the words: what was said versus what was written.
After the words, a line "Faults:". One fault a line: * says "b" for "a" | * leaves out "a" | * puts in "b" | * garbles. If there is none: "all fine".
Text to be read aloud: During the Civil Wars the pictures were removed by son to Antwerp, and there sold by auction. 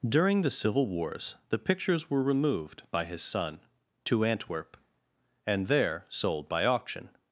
During the Civil Wars the pictures were removed by his son to Antwerp, and there sold by auction.
Faults:
* puts in "his"